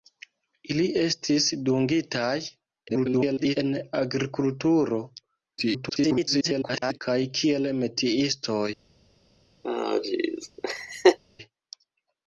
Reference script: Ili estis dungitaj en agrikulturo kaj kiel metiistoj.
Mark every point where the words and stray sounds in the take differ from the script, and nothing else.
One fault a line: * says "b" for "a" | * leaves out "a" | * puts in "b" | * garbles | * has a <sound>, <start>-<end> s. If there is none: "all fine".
* garbles
* garbles
* has a laugh, 9.6-11.2 s